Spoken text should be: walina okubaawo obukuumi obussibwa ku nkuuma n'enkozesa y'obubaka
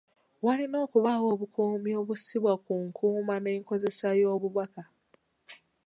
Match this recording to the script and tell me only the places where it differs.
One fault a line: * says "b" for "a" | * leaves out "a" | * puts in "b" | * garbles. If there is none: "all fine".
all fine